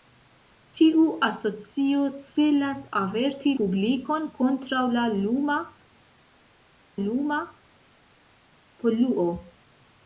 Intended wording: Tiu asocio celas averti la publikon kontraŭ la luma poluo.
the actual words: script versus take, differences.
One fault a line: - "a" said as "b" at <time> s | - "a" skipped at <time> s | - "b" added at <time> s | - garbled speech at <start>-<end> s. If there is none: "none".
- "la" skipped at 3.5 s
- "luma" added at 7.0 s